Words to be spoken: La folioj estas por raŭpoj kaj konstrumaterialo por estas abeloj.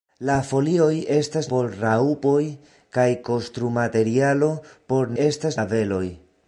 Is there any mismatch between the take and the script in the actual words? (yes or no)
no